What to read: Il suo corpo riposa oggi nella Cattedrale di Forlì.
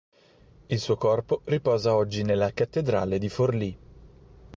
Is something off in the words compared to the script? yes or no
no